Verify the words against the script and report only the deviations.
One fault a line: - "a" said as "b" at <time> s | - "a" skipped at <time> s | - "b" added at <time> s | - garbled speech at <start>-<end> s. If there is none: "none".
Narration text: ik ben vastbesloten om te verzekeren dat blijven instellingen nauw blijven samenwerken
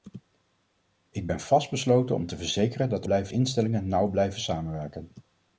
none